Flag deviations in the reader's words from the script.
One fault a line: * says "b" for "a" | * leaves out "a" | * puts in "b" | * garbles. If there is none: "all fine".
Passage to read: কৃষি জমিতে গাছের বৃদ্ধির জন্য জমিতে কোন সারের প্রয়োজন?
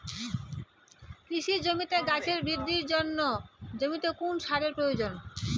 all fine